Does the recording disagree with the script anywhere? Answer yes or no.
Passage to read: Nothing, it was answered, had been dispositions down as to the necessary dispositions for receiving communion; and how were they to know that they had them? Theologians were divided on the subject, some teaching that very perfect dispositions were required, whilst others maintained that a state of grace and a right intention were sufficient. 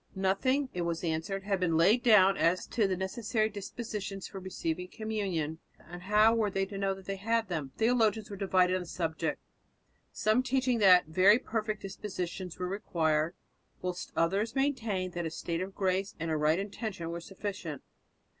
yes